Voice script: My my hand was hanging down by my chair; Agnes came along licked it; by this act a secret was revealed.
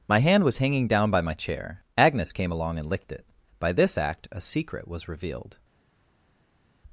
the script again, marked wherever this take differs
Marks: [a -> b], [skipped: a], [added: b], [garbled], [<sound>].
My [skipped: my] hand was hanging down by my chair; Agnes came along [added: and] licked it; by this act a secret was revealed.